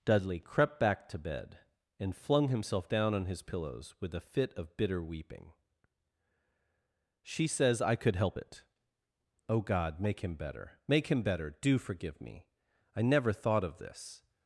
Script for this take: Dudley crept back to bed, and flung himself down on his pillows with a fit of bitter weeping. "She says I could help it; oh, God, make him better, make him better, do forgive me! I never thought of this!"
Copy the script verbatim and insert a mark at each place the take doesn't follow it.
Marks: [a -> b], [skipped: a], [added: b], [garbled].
Dudley crept back to bed, and flung himself down on his pillows with a fit of bitter weeping. "She says I could help it; oh, God, make him better, make him better, do forgive me! I never thought of this!"